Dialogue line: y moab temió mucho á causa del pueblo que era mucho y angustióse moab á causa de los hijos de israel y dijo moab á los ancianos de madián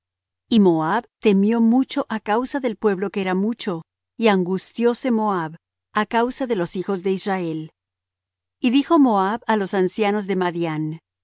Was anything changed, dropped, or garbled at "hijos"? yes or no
no